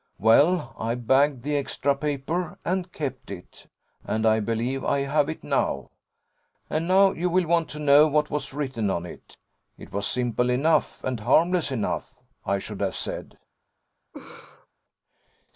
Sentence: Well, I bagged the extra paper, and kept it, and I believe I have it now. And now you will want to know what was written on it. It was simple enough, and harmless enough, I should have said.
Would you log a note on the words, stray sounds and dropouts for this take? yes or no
yes